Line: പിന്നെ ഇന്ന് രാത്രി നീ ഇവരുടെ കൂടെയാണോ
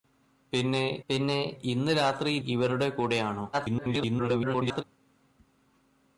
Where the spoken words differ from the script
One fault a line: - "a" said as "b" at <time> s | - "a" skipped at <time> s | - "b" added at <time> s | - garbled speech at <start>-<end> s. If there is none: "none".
- "പിന്നെ" added at 1.1 s
- "നീ" skipped at 2.4 s
- garbled speech at 3.5-4.8 s